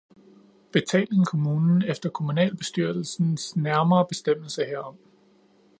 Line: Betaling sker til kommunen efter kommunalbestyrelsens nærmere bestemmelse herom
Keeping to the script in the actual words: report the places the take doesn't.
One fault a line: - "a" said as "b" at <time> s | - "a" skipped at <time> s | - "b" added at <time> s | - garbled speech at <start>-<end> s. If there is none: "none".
- "sker til" skipped at 1.3 s